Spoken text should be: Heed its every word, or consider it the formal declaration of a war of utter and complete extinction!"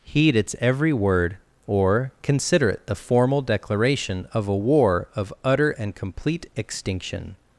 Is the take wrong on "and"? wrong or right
right